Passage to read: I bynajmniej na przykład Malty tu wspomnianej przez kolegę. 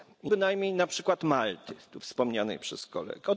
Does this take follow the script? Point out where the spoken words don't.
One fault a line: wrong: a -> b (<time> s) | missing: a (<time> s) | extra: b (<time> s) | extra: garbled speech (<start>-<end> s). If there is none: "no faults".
no faults